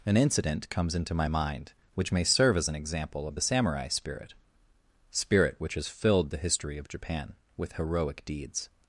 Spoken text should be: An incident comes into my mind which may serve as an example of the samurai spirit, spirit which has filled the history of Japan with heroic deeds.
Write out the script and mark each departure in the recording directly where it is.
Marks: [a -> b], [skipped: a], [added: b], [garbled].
An incident comes into my mind which may serve as an example of the samurai spirit, spirit which has filled the history of Japan with heroic deeds.